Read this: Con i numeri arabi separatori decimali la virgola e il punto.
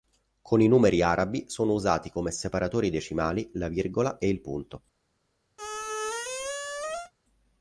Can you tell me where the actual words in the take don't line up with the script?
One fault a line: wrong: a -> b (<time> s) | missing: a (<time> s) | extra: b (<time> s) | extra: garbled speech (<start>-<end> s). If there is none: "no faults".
extra: sono usati come (1.5 s)